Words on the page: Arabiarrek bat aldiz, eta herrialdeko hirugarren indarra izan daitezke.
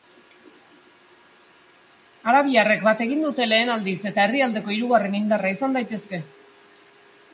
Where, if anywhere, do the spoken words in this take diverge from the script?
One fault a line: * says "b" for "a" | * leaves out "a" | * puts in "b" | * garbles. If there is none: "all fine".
* puts in "egin dute lehen"